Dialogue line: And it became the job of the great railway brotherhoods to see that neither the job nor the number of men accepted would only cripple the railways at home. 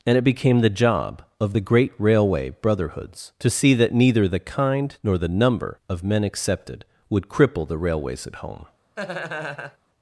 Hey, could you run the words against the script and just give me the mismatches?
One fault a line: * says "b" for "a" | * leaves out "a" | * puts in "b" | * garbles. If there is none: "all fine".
* says "kind" for "job"
* leaves out "only"